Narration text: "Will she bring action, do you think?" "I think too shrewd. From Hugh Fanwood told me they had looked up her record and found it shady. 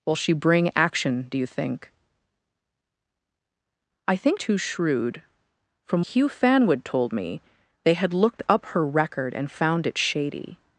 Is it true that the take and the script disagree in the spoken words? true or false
false